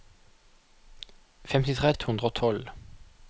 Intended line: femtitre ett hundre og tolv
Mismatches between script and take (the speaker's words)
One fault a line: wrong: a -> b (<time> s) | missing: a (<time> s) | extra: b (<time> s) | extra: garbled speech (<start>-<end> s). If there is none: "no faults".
no faults